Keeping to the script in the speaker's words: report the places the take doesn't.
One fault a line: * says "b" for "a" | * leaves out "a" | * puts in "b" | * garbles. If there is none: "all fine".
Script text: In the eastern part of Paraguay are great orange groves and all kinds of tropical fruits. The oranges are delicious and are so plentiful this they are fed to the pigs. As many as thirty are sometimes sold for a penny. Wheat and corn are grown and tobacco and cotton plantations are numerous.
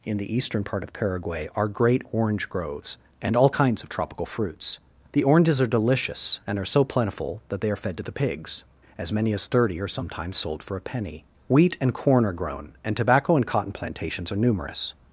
* says "that" for "this"